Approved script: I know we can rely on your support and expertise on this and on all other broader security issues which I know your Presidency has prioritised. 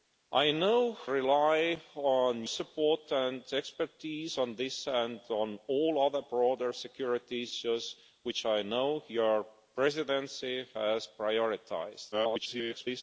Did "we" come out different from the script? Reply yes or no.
yes